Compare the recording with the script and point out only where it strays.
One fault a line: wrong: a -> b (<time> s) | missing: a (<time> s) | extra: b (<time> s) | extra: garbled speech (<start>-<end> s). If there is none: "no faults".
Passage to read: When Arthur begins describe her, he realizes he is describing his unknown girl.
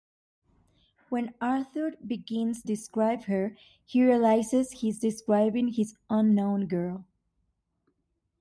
no faults